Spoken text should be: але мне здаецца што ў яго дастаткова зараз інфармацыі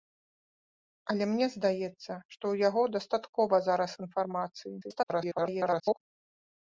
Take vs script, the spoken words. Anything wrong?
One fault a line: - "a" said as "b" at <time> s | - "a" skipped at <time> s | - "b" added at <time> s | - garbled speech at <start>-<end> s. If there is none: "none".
- garbled speech at 4.8-6.0 s